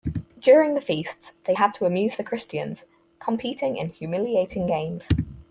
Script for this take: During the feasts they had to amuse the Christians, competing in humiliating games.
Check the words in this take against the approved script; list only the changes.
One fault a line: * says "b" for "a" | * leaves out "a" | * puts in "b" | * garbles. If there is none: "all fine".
all fine